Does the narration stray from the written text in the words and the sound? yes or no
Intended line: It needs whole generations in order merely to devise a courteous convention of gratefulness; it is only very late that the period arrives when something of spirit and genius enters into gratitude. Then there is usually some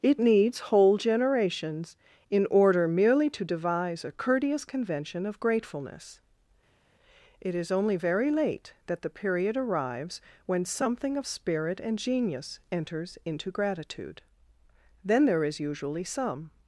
no